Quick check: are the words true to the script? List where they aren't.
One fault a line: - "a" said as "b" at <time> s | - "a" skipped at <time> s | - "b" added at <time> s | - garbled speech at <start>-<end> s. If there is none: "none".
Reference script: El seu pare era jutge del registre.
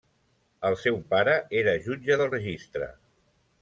none